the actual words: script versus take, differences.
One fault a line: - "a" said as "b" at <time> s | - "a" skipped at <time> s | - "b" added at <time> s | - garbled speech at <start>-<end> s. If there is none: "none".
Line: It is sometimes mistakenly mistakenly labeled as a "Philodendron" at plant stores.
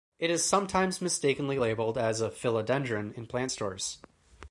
- "mistakenly" skipped at 1.6 s
- "at" said as "in" at 3.1 s